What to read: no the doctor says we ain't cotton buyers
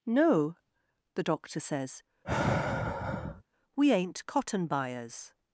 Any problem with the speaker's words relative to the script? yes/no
no